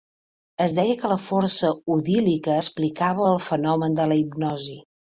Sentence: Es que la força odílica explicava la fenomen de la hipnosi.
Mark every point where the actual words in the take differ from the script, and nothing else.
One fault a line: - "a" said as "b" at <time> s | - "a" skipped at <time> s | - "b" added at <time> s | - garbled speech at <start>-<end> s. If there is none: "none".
- "deia" added at 0.8 s
- "la" said as "el" at 3.3 s